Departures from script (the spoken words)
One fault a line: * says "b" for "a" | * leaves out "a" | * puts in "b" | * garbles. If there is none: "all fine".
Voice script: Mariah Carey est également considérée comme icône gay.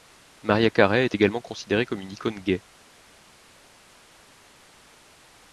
* puts in "une"